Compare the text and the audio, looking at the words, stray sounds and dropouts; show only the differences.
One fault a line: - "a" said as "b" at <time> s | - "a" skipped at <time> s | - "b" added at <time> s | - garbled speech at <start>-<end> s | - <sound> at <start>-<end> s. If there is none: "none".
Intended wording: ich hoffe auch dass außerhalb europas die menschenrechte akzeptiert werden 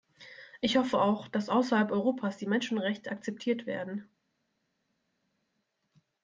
none